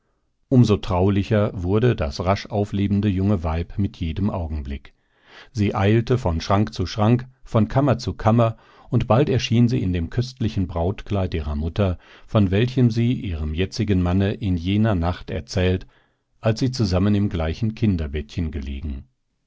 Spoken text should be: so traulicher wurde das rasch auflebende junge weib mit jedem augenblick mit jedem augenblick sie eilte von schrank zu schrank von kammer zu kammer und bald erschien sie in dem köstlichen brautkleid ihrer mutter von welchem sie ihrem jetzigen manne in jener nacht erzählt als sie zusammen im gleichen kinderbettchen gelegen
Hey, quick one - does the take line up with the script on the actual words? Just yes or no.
no